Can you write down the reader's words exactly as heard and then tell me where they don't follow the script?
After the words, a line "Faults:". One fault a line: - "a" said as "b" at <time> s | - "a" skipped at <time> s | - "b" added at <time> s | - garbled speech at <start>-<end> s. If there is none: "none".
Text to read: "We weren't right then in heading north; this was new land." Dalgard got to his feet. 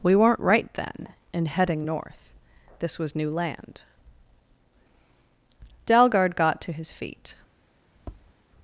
"We weren't right then in heading north; this was new land." Dalgard got to his feet.
Faults:
none